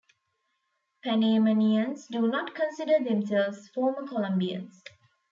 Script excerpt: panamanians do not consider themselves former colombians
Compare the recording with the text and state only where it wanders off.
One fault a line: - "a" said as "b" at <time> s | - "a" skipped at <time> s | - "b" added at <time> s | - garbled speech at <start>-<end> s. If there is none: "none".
none